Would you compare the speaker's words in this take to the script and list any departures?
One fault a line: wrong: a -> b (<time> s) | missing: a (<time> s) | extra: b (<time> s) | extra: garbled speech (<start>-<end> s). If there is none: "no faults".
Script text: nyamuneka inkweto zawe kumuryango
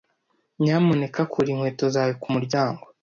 extra: kura (1.3 s)